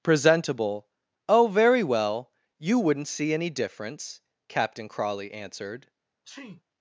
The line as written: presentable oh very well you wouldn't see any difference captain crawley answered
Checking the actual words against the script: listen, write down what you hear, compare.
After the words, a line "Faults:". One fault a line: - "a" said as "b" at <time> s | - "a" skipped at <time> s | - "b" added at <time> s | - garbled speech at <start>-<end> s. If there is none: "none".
presentable oh very well you wouldn't see any difference captain crawley answered
Faults:
none